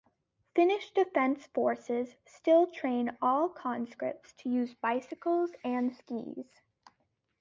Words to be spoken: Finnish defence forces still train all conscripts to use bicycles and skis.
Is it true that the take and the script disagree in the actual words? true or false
false